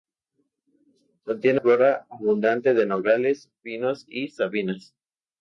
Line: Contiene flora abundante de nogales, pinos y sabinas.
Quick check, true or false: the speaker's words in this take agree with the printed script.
true